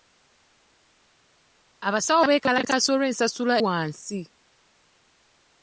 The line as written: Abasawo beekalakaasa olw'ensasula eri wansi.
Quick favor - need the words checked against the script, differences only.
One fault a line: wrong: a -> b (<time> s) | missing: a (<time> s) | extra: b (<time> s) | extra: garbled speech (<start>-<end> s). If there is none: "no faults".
missing: eri (3.5 s)